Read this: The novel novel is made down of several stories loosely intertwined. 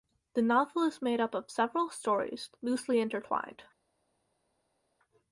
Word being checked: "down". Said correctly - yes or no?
no